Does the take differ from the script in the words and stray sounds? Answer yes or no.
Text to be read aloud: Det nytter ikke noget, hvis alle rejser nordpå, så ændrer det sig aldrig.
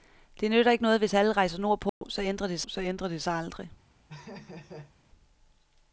yes